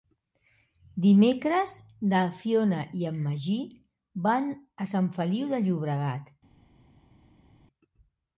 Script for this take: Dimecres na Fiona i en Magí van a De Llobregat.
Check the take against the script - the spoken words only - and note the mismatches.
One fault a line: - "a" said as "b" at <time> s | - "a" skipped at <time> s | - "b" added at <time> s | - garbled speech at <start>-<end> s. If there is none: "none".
- "Sant Feliu" added at 5.0 s